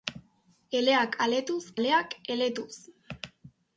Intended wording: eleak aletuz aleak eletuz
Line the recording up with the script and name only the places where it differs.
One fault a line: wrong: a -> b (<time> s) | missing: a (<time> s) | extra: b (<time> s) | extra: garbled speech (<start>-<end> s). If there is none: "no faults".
no faults